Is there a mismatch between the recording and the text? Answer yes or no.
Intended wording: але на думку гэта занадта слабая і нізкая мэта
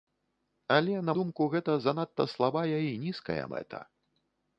no